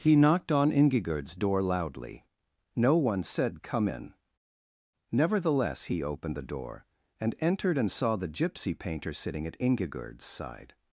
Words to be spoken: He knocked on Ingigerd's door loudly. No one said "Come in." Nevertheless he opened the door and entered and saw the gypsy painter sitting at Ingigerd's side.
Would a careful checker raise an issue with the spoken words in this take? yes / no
no